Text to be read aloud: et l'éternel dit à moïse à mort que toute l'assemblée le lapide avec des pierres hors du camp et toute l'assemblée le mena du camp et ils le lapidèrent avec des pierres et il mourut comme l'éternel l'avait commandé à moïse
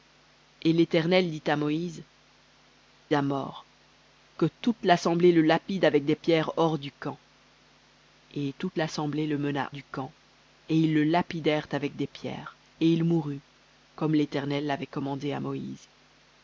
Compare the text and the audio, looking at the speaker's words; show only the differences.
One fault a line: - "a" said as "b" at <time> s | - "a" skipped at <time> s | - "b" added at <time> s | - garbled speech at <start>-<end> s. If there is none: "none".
none